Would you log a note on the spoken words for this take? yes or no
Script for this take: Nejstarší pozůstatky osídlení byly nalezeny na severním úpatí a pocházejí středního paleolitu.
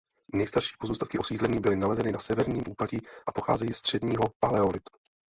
no